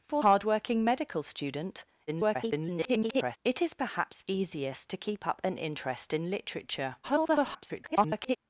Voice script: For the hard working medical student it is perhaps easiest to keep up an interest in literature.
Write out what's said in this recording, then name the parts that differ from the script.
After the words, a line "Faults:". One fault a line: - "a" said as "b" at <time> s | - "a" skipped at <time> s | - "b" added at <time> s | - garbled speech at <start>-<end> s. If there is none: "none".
For hard working medical student [garbled] it is perhaps easiest to keep up an interest in literature. [garbled]
Faults:
- "the" skipped at 0.2 s
- garbled speech at 2.1-3.4 s
- garbled speech at 7.0-8.4 s